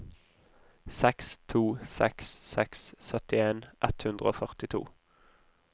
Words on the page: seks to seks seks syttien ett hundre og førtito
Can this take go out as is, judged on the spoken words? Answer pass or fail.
pass